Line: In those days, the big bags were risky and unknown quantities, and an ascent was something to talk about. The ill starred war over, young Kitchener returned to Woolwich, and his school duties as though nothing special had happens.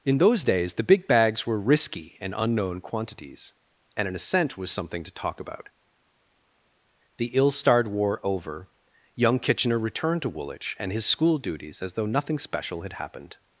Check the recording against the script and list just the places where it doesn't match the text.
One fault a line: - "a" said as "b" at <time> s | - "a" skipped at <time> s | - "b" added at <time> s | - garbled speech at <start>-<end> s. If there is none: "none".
- "happens" said as "happened" at 12.9 s